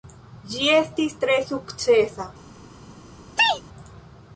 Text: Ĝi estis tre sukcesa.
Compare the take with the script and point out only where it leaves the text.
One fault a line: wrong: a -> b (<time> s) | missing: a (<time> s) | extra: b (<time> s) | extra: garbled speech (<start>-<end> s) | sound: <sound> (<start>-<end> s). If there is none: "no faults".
sound: sneeze (3.4-3.6 s)